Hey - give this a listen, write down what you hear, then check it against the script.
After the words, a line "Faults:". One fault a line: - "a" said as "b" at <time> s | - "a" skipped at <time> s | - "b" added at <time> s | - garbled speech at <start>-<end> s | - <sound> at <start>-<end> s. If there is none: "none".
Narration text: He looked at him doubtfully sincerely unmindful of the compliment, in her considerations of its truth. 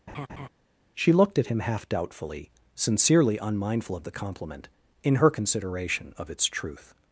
She looked at him half doubtfully sincerely unmindful of the compliment, in her consideration of its truth.
Faults:
- laugh at 0.1-0.5 s
- "He" said as "She" at 1.0 s
- "half" added at 1.6 s
- "considerations" said as "consideration" at 5.3 s